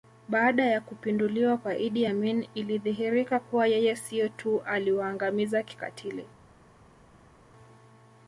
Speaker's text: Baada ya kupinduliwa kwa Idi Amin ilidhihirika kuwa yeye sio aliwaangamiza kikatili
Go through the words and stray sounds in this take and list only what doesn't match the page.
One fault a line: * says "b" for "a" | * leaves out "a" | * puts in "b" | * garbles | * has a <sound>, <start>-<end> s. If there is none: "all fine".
* puts in "tu"